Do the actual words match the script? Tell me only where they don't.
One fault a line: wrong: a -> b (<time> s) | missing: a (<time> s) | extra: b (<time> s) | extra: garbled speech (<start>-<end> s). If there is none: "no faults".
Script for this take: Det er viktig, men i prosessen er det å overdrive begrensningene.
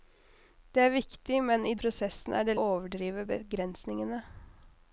no faults